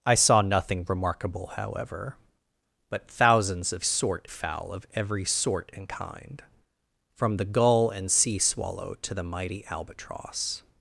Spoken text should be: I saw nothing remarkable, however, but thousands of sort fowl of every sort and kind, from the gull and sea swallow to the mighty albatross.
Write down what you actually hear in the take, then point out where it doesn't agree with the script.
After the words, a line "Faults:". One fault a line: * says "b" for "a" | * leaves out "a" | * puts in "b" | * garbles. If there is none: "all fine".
I saw nothing remarkable, however, but thousands of sort fowl of every sort and kind, from the gull and sea swallow to the mighty albatross.
Faults:
all fine